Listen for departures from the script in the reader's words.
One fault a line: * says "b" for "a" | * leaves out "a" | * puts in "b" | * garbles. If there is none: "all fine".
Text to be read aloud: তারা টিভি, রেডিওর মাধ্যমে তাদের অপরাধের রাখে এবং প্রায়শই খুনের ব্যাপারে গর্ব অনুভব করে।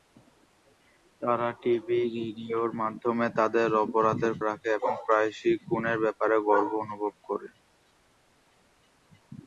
all fine